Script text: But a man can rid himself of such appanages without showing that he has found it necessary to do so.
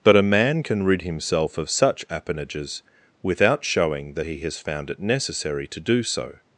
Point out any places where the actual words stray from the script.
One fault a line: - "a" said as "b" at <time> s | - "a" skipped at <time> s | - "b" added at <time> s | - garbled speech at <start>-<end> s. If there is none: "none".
none